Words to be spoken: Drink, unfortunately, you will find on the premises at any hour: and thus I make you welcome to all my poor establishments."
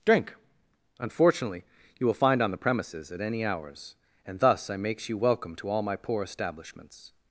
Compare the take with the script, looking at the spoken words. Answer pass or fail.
fail